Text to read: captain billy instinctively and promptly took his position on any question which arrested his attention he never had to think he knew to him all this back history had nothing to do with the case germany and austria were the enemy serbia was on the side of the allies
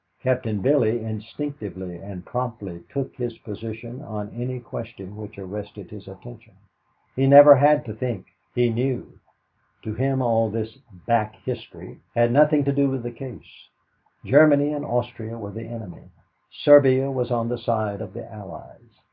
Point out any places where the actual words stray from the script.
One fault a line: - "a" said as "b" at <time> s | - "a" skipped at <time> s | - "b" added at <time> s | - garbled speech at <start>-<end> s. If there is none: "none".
none